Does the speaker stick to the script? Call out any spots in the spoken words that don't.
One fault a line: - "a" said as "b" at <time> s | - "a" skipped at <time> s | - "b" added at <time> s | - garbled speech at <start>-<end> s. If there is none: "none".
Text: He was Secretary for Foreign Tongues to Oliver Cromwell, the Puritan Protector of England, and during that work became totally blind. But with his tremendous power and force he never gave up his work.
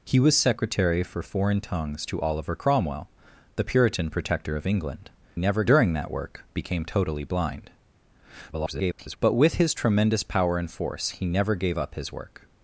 - "and" said as "never" at 5.3 s
- garbled speech at 8.5-9.2 s